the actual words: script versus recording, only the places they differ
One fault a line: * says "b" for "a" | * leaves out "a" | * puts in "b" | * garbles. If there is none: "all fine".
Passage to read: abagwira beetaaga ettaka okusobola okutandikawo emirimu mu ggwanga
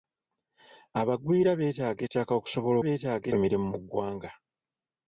* says "beetaaga" for "okutandikawo"